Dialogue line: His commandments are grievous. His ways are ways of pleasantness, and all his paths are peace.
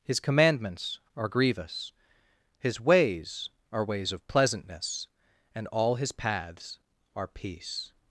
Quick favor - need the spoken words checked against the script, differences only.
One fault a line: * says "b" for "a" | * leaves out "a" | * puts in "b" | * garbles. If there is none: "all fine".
all fine